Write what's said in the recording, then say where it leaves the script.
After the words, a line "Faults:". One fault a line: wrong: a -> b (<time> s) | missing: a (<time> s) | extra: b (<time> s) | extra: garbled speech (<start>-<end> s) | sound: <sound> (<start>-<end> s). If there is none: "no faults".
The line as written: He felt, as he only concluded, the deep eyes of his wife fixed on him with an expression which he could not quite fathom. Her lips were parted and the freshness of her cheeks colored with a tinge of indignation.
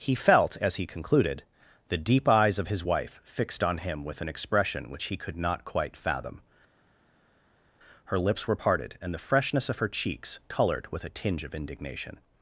He felt, as he concluded, the deep eyes of his wife fixed on him with an expression which he could not quite fathom. Her lips were parted and the freshness of her cheeks colored with a tinge of indignation.
Faults:
missing: only (0.9 s)